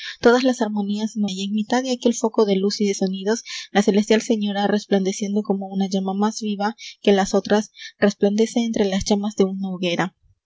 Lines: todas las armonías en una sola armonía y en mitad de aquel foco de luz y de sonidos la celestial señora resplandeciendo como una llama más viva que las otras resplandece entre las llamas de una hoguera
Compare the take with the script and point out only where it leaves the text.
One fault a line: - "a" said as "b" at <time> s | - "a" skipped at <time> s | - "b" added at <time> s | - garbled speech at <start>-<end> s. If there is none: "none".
- "una sola armonía" skipped at 1.2 s